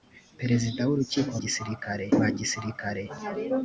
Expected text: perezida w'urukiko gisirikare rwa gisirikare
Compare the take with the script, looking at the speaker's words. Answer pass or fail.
pass